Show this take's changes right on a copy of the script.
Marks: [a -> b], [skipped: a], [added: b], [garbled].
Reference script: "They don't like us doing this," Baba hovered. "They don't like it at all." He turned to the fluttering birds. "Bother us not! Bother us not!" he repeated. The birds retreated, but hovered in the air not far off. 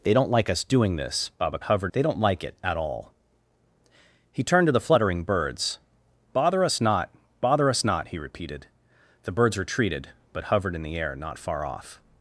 "They don't like us doing this," Baba hovered. "They don't like it at all." He turned to the fluttering birds. "Bother us not! Bother us not!" he repeated. The birds retreated, but hovered in the air not far off.